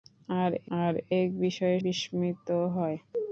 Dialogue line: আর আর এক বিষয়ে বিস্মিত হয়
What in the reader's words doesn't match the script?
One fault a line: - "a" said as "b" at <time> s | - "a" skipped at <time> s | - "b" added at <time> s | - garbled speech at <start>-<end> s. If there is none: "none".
none